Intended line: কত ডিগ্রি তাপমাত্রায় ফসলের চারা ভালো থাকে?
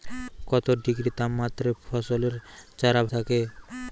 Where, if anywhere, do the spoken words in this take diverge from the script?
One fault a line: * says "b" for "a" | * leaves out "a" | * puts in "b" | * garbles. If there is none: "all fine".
* leaves out "ভালো"